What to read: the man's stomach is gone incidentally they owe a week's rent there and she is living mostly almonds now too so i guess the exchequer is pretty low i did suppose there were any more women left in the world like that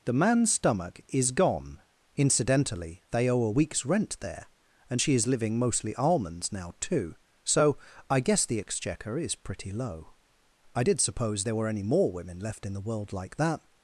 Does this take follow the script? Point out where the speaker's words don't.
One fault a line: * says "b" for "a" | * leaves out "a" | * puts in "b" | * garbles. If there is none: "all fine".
all fine